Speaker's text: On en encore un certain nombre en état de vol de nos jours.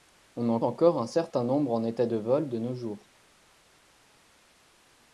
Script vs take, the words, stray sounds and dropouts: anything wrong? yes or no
no